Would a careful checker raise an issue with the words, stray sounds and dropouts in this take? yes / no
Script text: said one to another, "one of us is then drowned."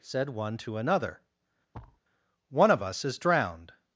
yes